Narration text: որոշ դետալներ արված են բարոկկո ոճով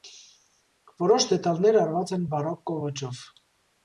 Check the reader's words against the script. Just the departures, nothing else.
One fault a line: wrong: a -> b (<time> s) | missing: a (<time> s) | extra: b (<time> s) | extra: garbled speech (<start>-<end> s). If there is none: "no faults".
no faults